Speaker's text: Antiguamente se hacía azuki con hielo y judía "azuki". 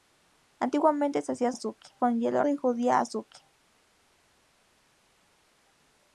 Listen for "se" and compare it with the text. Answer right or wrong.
right